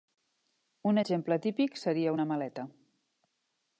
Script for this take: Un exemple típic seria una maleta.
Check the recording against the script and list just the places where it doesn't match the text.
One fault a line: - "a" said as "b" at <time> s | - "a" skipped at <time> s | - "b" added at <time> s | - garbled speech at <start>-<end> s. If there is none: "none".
none